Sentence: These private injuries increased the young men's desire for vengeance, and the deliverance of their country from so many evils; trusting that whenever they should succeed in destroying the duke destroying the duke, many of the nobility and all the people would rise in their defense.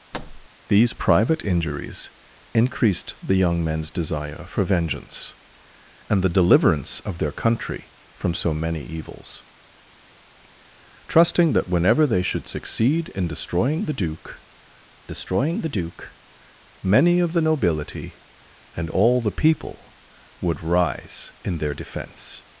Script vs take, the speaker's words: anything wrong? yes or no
no